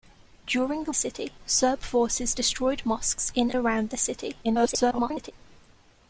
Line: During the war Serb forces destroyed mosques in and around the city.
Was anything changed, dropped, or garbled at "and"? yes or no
yes